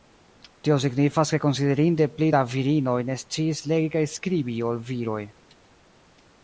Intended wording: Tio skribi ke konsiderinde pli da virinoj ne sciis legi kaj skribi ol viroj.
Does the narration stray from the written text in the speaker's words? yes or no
yes